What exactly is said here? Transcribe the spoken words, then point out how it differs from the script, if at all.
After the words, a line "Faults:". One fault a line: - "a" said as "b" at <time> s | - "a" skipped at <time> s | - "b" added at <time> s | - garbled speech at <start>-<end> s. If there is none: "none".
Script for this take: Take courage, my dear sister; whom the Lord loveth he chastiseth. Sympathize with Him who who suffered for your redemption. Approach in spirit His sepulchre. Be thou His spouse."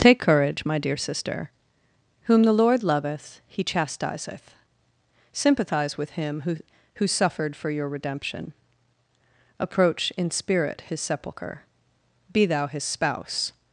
Take courage, my dear sister; whom the Lord loveth he chastiseth. Sympathize with Him who who suffered for your redemption. Approach in spirit His sepulchre. Be thou His spouse."
Faults:
none